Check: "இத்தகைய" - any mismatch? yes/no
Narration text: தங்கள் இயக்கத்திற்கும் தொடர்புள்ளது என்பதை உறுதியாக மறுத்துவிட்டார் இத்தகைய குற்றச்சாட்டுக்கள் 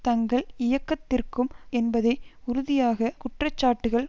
yes